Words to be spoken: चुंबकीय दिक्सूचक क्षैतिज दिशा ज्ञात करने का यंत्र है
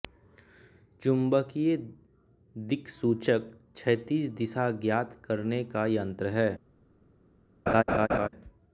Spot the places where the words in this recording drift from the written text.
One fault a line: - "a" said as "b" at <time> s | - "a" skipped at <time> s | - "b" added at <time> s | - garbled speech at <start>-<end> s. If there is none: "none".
none